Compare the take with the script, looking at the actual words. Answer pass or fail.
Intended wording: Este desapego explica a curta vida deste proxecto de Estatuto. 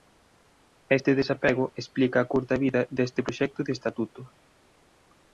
pass